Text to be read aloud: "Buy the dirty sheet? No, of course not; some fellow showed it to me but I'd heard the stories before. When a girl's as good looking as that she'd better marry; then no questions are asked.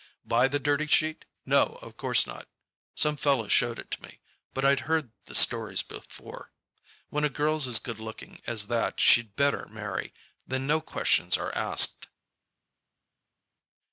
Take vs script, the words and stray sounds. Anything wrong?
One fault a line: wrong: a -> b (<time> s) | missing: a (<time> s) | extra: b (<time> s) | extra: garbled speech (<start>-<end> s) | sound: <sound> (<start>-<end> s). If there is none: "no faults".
no faults